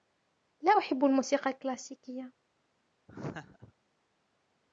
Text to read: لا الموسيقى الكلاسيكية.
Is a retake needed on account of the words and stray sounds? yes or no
yes